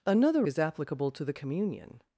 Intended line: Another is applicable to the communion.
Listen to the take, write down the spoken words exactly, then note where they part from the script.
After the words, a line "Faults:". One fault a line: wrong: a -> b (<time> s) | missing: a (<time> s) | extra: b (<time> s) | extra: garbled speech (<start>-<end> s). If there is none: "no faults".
Another is applicable to the communion.
Faults:
no faults